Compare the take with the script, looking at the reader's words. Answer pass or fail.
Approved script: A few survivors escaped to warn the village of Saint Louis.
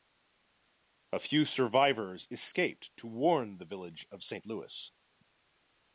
pass